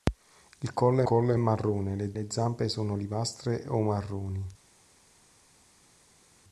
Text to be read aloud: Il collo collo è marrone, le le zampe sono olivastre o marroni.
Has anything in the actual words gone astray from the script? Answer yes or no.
no